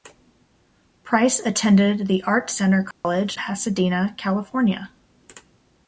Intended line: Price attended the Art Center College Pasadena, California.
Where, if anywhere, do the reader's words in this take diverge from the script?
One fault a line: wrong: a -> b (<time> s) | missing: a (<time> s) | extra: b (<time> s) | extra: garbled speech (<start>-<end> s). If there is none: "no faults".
no faults